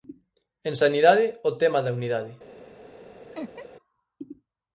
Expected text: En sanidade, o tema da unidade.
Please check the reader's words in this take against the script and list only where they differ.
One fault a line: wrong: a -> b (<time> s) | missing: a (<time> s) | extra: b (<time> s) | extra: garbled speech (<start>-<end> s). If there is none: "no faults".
no faults